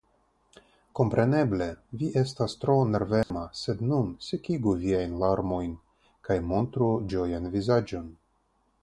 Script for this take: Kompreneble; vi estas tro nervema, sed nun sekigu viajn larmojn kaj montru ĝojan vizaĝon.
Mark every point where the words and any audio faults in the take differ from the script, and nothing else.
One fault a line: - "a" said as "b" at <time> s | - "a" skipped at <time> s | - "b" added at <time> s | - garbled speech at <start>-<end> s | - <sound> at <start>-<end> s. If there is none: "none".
- dropout at 3.2-3.3 s